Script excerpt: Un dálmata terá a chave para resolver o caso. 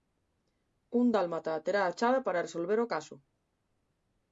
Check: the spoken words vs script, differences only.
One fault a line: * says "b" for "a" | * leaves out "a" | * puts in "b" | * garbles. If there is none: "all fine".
all fine